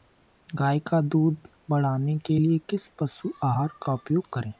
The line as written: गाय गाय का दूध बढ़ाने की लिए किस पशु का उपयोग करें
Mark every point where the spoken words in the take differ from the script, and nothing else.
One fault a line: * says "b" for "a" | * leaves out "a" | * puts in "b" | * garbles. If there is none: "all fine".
* leaves out "गाय"
* says "के" for "की"
* puts in "आहार"